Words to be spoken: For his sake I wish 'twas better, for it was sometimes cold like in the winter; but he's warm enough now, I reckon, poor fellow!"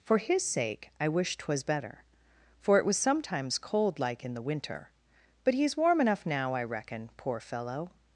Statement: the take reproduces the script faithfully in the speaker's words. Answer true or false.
true